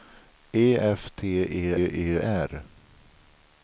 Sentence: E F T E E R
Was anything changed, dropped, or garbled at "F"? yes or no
no